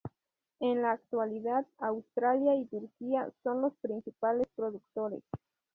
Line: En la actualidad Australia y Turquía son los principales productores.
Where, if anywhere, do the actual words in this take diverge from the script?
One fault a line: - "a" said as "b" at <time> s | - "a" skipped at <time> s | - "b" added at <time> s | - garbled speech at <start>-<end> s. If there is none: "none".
none